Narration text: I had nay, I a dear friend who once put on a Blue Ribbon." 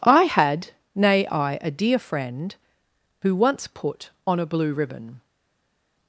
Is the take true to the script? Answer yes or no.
yes